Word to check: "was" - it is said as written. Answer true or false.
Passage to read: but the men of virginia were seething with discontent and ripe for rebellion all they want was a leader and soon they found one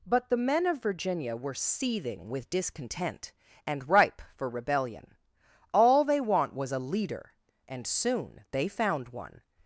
true